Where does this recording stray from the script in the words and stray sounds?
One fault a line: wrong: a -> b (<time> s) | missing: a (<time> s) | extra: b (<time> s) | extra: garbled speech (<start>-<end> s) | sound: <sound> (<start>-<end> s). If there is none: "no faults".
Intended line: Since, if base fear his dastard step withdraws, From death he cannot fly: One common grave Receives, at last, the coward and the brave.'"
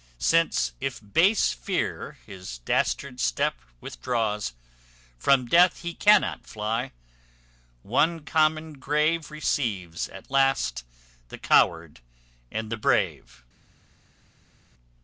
no faults